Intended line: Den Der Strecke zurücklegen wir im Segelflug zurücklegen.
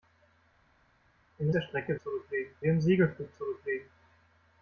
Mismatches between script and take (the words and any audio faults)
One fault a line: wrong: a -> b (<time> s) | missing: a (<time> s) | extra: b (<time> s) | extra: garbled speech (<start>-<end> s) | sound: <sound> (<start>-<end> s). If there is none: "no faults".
no faults